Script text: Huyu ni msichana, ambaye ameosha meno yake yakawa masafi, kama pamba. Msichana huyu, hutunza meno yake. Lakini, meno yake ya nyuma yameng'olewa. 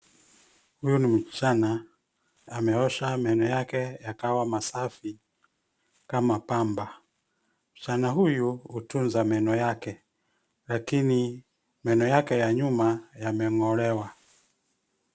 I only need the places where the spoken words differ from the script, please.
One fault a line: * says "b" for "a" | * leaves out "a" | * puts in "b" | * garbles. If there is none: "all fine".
* leaves out "ambaye"